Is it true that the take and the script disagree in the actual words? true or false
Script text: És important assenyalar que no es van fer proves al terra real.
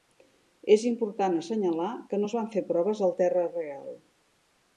false